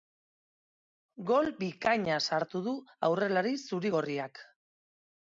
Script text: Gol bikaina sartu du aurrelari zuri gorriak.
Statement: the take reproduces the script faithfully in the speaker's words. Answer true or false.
true